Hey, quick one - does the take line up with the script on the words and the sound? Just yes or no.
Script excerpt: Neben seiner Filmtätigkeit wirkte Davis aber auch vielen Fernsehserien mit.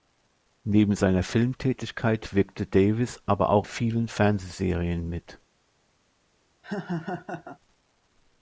no